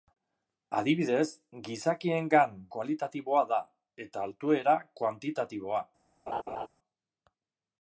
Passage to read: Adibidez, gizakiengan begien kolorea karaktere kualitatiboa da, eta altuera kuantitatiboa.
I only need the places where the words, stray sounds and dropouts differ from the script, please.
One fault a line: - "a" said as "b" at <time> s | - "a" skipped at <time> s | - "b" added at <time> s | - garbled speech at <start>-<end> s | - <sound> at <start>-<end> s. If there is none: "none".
- "begien kolorea karaktere" skipped at 2.5 s
- laugh at 6.3-6.7 s